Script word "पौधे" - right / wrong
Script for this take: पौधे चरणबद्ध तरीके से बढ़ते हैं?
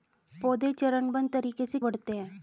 right